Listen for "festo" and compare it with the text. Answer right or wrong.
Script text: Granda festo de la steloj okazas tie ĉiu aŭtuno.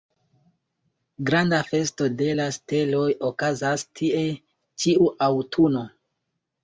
right